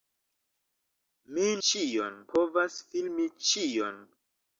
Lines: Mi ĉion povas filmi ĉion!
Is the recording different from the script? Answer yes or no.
no